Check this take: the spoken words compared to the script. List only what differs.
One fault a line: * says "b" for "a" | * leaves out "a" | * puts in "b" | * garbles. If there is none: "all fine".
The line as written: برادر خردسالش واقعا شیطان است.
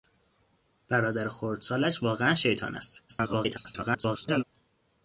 * garbles